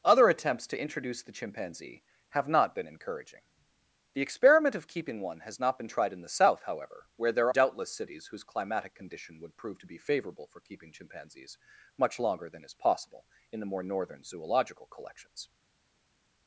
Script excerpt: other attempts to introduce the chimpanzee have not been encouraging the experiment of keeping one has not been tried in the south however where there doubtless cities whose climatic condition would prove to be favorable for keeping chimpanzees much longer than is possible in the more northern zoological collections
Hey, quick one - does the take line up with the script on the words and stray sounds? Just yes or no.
yes